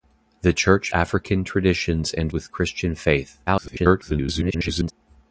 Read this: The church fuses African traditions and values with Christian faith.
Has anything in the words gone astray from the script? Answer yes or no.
yes